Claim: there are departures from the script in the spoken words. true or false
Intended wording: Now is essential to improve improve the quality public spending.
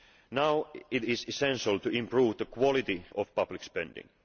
true